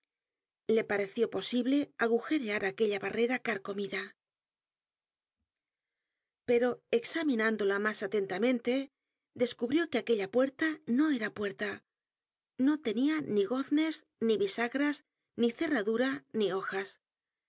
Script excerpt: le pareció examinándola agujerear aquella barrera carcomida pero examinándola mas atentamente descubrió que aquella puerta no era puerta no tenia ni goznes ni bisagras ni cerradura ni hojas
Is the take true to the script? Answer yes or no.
no